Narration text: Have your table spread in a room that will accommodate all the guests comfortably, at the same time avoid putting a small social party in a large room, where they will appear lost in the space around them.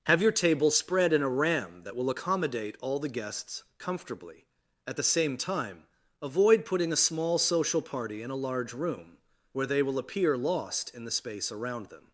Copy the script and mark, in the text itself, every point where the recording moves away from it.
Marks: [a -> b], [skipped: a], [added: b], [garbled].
Have your table spread in a [room -> ram] that will accommodate all the guests comfortably, at the same time avoid putting a small social party in a large room, where they will appear lost in the space around them.